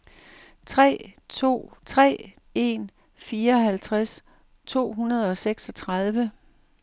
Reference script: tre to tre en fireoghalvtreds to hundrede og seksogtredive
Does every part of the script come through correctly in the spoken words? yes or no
yes